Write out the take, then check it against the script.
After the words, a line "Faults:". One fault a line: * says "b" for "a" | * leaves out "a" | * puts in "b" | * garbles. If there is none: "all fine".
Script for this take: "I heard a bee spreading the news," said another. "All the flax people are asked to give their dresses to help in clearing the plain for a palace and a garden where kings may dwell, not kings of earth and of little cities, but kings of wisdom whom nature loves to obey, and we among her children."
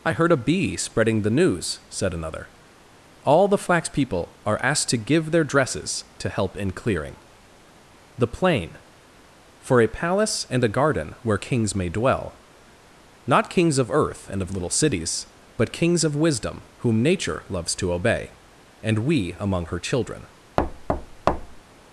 "I heard a bee spreading the news," said another. "All the flax people are asked to give their dresses to help in clearing the plain for a palace and a garden where kings may dwell, not kings of earth and of little cities, but kings of wisdom whom nature loves to obey, and we among her children."
Faults:
all fine